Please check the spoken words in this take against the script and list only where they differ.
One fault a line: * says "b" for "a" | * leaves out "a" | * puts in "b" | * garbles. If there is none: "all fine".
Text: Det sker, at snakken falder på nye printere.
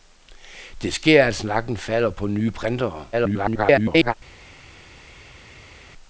* garbles